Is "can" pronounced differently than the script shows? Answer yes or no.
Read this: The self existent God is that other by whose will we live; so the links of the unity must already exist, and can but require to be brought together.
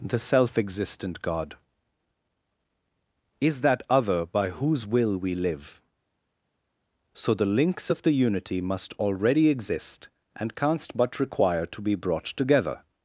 yes